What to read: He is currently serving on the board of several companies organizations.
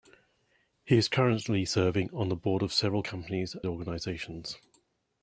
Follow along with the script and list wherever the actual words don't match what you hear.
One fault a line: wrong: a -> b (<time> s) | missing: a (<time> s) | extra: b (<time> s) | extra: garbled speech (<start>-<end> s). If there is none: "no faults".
no faults